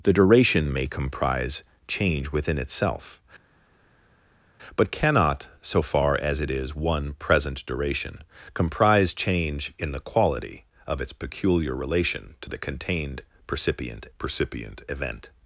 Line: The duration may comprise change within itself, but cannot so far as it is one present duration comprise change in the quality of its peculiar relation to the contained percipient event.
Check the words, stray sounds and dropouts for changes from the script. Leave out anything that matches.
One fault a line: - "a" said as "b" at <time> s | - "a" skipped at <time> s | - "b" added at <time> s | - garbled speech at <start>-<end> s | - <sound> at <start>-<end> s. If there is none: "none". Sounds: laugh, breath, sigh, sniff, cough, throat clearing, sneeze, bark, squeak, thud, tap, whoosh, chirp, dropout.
- "percipient" added at 14.2 s